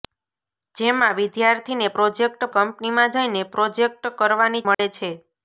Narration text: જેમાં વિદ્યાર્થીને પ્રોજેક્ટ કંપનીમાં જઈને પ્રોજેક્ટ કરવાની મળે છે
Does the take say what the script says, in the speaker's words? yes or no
yes